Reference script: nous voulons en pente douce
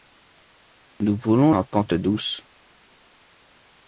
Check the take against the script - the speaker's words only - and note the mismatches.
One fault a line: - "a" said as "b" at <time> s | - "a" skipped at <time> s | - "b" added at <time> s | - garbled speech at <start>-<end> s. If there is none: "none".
none